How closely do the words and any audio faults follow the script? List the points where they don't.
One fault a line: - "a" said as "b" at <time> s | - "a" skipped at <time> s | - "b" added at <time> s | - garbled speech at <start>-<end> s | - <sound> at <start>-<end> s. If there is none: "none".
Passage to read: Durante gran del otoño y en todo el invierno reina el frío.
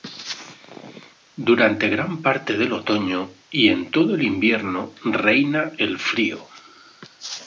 - "parte" added at 2.2 s